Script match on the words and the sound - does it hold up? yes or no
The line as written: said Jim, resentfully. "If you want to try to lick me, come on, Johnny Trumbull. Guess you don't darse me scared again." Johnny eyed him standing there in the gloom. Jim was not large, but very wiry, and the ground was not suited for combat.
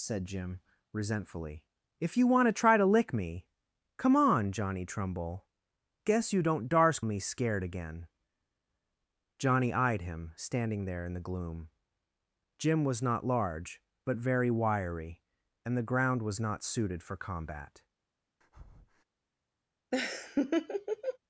no